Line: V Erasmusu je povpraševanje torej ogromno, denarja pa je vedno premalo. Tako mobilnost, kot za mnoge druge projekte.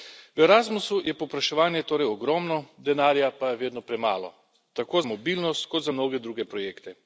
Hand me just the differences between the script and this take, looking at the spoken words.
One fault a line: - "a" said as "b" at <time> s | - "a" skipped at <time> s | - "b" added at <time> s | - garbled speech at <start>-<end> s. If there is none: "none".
none